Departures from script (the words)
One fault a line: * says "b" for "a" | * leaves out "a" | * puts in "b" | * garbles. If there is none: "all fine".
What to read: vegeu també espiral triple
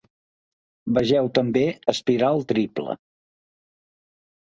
all fine